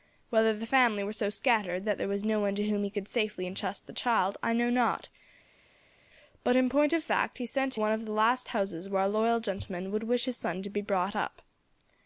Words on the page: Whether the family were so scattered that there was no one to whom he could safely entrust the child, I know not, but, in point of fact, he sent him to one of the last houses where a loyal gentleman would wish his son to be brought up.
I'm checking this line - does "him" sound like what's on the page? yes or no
no